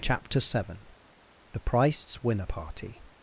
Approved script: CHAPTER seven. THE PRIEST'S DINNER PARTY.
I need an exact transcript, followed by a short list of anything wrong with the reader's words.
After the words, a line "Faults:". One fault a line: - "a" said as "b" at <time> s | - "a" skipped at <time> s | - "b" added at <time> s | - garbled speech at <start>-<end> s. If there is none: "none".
CHAPTER seven. THE PRIEST'S Winner PARTY.
Faults:
- "DINNER" said as "Winner" at 2.2 s